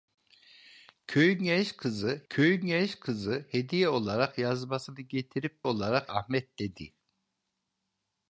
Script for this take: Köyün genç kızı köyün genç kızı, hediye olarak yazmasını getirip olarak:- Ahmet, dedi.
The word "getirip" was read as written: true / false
true